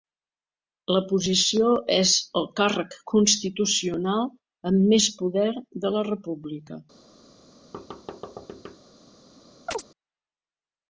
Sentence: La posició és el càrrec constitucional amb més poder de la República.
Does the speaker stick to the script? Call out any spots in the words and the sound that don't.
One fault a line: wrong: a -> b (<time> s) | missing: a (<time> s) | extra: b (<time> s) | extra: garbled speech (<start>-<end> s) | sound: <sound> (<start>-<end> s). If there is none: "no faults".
sound: thud (7.7-8.8 s)
sound: chirp (9.7-9.8 s)